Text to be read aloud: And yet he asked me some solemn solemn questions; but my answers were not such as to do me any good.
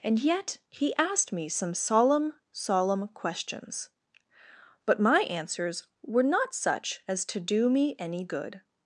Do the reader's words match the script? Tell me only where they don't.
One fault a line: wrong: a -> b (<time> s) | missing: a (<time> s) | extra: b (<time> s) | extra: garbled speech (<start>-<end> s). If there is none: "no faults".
no faults